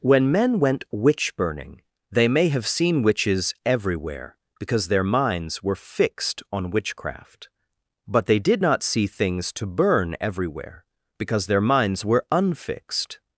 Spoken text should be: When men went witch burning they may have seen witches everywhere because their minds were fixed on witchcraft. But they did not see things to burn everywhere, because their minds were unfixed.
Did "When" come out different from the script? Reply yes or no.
no